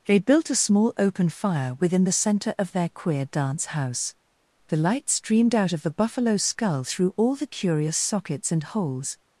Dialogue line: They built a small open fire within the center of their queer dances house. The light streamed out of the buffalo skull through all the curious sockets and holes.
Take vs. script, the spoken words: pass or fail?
fail